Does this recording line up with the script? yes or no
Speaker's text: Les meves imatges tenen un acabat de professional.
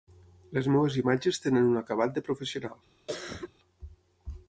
yes